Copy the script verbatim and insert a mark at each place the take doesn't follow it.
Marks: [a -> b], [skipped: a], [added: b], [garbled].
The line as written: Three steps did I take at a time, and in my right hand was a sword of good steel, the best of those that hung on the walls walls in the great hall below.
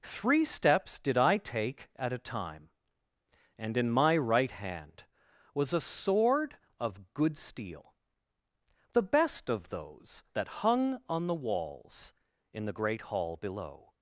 Three steps did I take at a time, and in my right hand was a sword of good steel, the best of those that hung on the walls [skipped: walls] in the great hall below.